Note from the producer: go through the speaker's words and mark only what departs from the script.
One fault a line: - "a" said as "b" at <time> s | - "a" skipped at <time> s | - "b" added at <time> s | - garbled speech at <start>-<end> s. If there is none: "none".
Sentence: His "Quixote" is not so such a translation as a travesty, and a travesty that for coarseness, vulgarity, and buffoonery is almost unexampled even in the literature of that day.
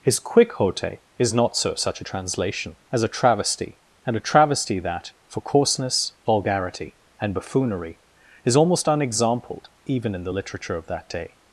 none